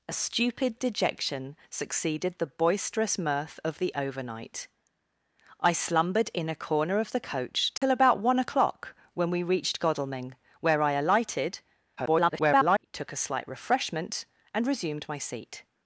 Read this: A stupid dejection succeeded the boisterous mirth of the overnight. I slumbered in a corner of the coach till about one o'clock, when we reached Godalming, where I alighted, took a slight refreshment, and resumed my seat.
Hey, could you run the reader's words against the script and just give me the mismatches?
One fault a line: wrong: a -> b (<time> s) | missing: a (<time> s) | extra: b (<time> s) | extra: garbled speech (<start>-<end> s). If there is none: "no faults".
extra: garbled speech (12.0-12.9 s)